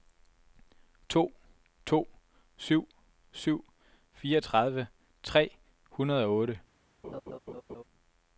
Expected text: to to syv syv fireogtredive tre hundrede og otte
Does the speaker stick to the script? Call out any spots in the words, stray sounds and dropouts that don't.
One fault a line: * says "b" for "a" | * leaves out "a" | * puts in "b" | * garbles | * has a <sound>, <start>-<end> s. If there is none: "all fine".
* has a laugh, 7.0-7.8 s